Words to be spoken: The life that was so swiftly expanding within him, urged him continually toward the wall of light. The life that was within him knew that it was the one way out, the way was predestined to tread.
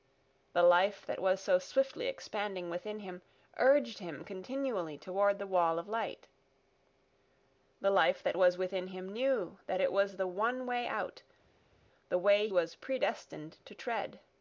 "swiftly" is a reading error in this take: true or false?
false